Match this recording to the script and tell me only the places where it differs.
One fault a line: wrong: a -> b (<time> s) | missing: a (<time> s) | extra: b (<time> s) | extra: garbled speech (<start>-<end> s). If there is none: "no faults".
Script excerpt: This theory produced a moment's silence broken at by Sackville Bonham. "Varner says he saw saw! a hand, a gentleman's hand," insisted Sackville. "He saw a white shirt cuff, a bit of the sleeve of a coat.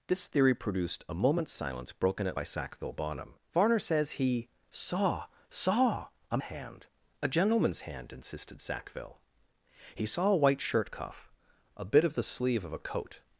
no faults